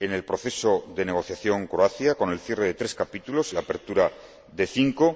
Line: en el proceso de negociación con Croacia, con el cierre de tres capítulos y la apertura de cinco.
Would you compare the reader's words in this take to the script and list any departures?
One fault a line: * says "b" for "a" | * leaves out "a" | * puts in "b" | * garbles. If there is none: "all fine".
* leaves out "con"